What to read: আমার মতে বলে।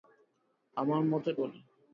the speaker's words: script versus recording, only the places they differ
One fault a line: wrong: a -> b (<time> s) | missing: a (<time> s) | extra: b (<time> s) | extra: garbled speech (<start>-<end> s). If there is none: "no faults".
no faults